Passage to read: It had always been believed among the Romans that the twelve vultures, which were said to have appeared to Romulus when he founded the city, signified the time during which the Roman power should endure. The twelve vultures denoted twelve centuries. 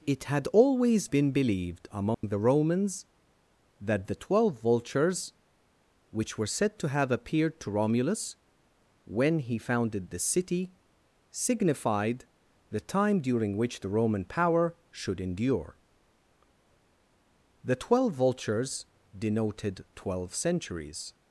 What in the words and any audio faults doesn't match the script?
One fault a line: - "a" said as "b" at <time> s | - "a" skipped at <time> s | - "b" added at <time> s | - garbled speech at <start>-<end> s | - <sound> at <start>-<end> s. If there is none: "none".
- dropout at 2.1-2.2 s